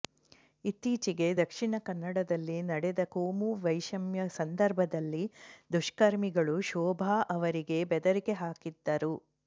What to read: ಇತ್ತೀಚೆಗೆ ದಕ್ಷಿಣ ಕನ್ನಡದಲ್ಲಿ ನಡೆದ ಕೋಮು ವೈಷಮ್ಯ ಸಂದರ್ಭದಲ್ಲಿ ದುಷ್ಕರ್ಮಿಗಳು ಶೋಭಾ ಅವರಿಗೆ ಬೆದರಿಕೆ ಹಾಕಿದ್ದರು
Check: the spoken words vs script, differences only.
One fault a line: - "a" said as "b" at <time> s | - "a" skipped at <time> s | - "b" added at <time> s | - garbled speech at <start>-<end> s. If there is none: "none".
none